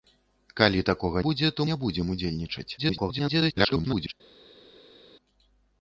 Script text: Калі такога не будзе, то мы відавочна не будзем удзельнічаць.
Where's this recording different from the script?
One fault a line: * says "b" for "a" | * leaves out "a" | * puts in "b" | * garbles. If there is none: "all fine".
* leaves out "не"
* leaves out "мы відавочна"
* garbles